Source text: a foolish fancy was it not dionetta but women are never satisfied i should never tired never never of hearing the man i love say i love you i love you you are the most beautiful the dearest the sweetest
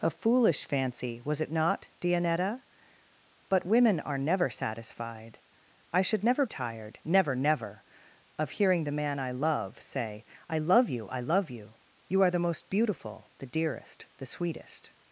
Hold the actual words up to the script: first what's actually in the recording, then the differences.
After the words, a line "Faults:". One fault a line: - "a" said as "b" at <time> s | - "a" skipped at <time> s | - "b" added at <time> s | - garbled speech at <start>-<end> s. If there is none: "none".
a foolish fancy was it not dionetta but women are never satisfied i should never tired never never of hearing the man i love say i love you i love you you are the most beautiful the dearest the sweetest
Faults:
none